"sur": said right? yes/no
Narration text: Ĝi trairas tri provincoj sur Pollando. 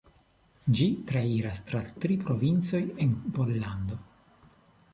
no